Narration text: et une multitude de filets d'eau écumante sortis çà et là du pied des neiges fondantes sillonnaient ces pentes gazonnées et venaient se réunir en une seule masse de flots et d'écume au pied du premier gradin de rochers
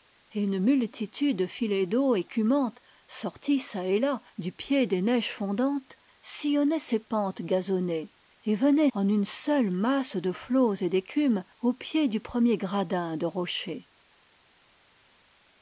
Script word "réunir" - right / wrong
wrong